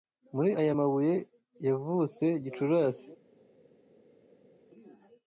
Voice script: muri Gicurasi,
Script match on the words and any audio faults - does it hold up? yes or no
no